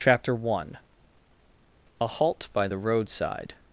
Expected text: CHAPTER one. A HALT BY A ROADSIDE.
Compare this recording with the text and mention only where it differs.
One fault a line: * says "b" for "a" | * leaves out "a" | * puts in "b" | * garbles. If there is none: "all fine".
* says "THE" for "A"